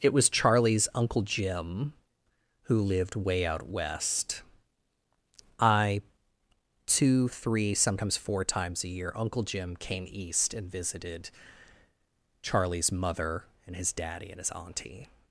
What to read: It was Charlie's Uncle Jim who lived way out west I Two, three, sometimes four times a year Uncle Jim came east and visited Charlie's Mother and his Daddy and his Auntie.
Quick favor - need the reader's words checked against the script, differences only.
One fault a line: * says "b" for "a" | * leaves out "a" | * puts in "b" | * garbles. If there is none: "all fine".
all fine